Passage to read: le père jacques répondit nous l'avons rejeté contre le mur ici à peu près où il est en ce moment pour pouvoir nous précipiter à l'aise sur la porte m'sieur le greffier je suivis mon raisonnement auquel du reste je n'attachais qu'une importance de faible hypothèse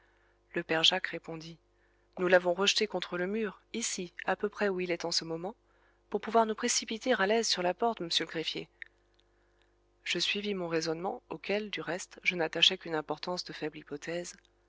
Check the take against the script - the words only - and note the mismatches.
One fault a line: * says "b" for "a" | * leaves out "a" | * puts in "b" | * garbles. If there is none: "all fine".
all fine